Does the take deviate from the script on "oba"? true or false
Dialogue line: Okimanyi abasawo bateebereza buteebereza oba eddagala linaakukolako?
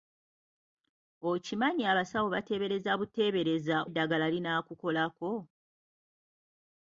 true